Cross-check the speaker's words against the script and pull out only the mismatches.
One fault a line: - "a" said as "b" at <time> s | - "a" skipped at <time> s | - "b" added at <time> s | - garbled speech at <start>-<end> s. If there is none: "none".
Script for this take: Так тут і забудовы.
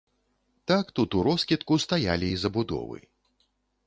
- "уроскідку стаялі" added at 1.1 s